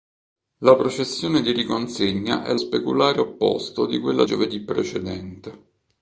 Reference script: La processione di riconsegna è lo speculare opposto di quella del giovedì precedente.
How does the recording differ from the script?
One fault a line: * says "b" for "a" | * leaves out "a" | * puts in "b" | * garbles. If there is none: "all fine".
* leaves out "lo"
* leaves out "del"